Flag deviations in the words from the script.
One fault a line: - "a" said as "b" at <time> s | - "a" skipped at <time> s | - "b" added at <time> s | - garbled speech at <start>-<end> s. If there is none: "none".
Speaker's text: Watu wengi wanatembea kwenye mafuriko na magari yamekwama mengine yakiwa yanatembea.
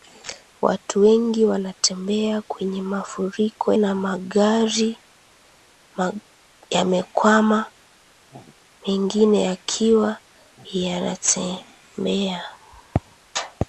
none